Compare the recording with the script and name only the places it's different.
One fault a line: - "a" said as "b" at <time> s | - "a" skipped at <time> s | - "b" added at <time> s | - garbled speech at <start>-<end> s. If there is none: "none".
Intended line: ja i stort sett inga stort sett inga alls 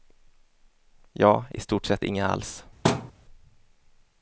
- "stort sett inga" skipped at 2.3 s